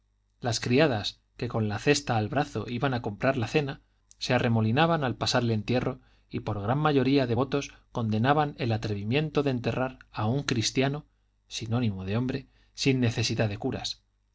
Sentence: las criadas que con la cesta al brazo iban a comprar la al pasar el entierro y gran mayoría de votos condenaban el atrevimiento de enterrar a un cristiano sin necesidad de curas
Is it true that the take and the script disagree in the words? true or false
true